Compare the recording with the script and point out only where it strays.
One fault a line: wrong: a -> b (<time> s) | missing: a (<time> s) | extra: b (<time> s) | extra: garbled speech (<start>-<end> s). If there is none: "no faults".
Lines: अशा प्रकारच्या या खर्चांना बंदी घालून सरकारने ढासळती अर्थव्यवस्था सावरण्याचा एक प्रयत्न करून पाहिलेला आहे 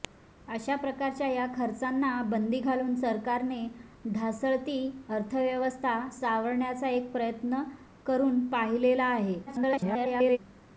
extra: garbled speech (9.5-10.4 s)